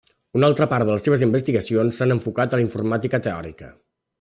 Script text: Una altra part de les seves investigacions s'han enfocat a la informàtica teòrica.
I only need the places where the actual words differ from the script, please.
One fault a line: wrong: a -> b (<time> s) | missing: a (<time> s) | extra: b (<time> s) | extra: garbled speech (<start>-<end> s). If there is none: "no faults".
no faults